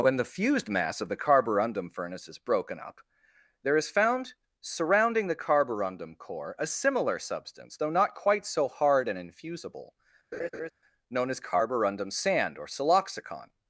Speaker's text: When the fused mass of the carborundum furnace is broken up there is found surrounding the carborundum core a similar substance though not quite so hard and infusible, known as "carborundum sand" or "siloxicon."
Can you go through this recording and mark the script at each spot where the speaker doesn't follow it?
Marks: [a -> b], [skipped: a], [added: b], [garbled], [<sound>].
When the fused mass of the carborundum furnace is broken up there is found surrounding the carborundum core a similar substance though not quite so hard and infusible, [laugh] known as "carborundum sand" or "siloxicon."